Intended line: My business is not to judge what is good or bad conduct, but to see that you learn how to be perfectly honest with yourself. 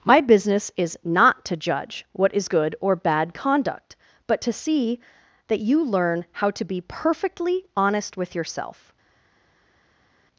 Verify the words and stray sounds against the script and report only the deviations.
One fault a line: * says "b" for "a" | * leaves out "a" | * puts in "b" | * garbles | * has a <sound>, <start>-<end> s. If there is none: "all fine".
all fine